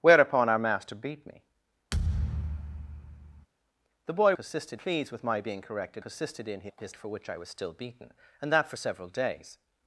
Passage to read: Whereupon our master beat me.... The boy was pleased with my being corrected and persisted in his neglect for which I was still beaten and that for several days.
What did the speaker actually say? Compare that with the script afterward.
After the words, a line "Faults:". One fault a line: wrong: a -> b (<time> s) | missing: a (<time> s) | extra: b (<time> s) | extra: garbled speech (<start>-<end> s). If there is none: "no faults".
Whereupon our master beat me.... The boy persisted pleased with my being corrected persisted in his for which I was still beaten and that for several days.
Faults:
wrong: was -> persisted (4.3 s)
missing: and (6.0 s)
missing: neglect (7.0 s)